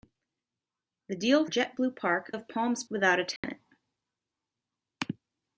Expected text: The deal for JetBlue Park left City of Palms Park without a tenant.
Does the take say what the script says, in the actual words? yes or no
no